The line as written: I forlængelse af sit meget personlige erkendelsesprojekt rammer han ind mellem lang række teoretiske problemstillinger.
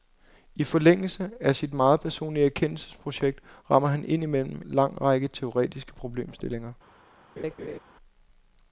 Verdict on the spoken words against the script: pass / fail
pass